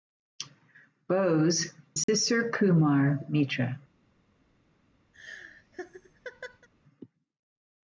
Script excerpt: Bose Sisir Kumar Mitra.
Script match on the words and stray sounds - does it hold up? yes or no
no